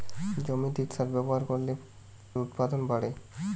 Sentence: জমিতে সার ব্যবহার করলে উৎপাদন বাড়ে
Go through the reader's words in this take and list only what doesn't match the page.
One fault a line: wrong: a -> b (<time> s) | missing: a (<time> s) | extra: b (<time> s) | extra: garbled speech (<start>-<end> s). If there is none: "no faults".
no faults